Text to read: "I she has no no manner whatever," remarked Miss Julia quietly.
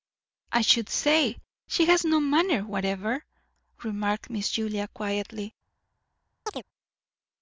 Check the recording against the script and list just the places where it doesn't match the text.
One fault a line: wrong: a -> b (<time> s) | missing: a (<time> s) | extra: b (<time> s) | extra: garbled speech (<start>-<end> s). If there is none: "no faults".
extra: should say (0.6 s)
missing: no (2.2 s)